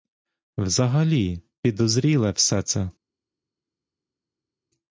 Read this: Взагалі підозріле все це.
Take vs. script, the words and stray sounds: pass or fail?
pass